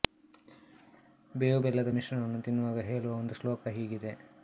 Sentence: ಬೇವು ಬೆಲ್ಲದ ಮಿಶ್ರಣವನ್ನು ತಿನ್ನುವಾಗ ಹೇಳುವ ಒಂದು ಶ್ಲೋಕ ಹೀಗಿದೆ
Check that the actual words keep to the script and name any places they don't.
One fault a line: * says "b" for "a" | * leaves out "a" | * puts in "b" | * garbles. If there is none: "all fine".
all fine